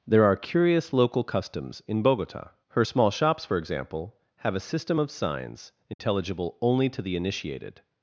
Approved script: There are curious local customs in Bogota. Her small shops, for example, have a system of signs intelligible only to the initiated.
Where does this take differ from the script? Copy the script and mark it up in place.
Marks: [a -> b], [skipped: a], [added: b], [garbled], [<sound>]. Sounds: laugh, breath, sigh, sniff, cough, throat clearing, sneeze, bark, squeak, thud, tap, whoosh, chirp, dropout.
There are curious local customs in Bogota. Her small shops, for example, have a system of signs intelligible [dropout] only to the initiated.